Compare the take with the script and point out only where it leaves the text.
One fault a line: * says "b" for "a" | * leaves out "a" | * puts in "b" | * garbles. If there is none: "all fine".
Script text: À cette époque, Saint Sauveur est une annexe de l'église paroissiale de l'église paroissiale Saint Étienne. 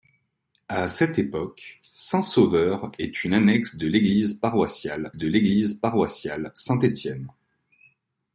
all fine